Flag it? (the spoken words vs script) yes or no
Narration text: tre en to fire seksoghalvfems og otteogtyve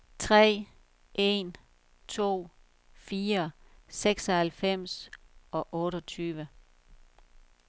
no